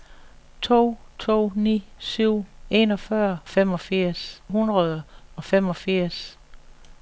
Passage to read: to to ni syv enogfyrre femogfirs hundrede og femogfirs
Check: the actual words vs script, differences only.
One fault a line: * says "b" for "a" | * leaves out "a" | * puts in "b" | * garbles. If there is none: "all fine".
all fine